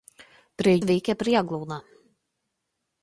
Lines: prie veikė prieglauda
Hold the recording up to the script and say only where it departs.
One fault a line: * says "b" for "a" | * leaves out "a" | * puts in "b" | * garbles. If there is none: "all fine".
all fine